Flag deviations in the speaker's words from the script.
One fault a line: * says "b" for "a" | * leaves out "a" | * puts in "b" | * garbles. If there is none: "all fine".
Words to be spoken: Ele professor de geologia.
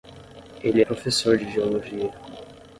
all fine